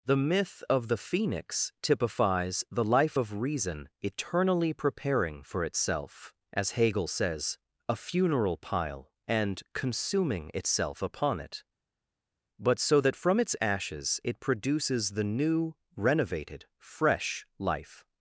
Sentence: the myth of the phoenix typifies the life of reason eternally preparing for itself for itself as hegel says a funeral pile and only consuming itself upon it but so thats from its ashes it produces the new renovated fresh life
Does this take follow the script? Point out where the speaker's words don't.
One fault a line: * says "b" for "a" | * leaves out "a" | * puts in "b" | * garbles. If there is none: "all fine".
* leaves out "for itself"
* leaves out "only"
* says "that" for "thats"